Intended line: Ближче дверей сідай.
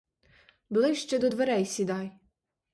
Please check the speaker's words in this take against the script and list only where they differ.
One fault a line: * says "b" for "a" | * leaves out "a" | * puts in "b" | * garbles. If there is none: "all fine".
* puts in "до"